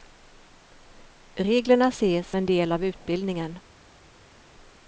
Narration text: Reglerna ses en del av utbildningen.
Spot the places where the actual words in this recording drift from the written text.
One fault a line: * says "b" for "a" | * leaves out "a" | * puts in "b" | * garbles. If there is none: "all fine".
all fine